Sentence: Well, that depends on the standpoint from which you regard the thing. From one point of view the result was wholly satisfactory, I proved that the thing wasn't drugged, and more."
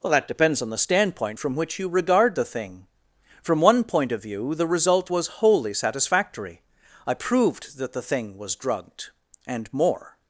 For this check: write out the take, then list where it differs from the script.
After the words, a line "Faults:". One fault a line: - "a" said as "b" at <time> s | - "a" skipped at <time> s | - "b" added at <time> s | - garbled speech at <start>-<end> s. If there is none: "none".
Well, that depends on the standpoint from which you regard the thing. From one point of view the result was wholly satisfactory, I proved that the thing was drugged, and more."
Faults:
- "wasn't" said as "was" at 8.4 s